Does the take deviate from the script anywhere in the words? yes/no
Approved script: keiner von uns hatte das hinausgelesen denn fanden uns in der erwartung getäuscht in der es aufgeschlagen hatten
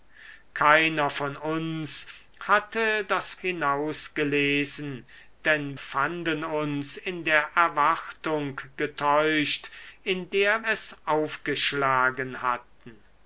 no